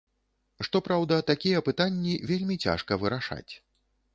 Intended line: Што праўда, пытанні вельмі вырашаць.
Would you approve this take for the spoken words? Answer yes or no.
no